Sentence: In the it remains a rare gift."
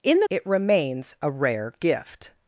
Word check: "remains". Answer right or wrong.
right